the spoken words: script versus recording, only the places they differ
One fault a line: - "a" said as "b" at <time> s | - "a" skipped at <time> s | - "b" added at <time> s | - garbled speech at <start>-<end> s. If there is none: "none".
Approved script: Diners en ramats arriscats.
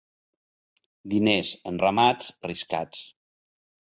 none